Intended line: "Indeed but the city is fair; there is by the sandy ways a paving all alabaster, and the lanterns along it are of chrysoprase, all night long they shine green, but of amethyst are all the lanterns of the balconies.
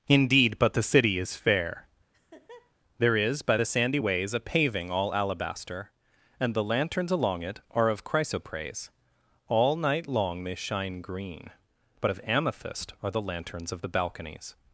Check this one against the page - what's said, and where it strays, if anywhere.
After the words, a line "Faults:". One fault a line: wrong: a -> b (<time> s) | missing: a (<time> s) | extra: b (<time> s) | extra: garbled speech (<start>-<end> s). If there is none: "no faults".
"Indeed but the city is fair; there is by the sandy ways a paving all alabaster, and the lanterns along it are of chrysoprase, all night long they shine green, but of amethyst are the lanterns of the balconies.
Faults:
missing: all (13.1 s)